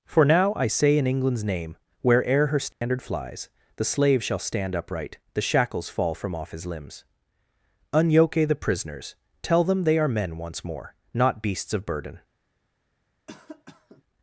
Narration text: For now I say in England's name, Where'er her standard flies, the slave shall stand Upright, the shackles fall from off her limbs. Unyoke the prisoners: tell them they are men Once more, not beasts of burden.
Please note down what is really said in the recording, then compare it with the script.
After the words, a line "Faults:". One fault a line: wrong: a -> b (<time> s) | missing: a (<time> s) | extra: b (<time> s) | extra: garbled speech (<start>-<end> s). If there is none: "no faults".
For now I say in England's name, Where'er her standard flies, the slave shall stand Upright, the shackles fall from off his limbs. Unyoke the prisoners: tell them they are men Once more, not beasts of burden.
Faults:
wrong: her -> his (6.5 s)